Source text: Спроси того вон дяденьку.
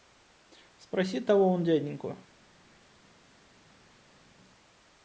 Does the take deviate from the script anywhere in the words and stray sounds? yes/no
no